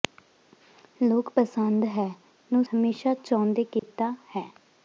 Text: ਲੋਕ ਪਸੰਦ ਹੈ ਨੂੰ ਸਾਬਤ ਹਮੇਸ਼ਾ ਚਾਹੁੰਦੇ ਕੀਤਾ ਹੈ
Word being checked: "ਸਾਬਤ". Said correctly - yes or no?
no